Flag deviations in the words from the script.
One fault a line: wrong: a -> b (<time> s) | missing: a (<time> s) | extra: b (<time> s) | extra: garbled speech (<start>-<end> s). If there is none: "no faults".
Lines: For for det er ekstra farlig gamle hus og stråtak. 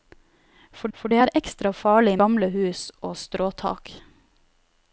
no faults